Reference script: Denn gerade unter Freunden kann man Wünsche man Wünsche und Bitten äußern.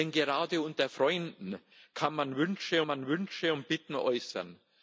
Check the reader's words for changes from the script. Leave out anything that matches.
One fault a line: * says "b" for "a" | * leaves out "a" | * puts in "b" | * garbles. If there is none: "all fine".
all fine